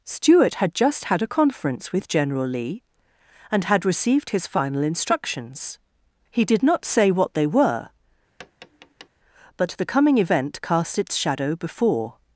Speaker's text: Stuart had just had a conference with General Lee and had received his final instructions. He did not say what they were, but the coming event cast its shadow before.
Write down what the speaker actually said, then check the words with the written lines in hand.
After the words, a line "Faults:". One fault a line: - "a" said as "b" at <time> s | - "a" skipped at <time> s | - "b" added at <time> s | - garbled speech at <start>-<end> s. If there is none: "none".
Stuart had just had a conference with General Lee and had received his final instructions. He did not say what they were, but the coming event cast its shadow before.
Faults:
none